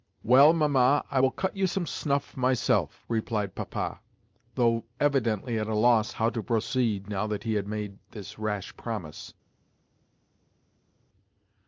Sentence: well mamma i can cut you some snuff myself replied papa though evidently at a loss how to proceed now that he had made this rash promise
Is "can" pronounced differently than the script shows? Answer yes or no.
yes